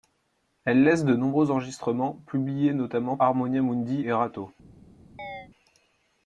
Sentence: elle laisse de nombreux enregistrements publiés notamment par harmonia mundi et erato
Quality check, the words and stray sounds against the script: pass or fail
fail